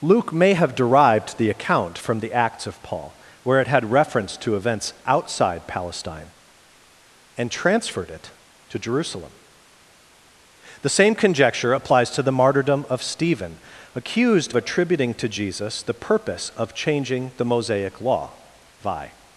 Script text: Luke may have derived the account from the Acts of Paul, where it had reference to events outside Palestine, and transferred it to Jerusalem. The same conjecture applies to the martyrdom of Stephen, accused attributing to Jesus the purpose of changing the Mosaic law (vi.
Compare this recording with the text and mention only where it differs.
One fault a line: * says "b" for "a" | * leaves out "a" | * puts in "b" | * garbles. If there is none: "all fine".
all fine